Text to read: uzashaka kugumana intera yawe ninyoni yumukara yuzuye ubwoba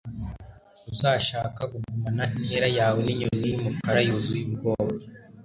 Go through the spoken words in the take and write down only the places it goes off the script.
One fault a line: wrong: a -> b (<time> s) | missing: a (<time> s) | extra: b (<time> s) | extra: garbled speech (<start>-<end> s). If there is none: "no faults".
no faults